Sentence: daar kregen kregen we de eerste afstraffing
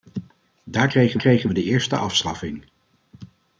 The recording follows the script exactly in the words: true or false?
true